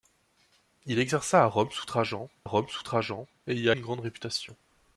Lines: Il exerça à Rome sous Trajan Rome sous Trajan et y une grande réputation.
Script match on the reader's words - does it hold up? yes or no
yes